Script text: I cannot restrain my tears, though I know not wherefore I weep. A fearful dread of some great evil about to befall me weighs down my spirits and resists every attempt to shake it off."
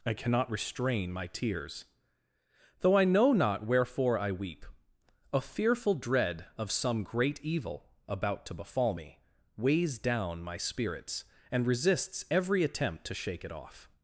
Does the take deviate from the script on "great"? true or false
false